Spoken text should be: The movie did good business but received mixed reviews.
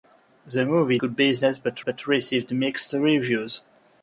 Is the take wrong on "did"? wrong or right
wrong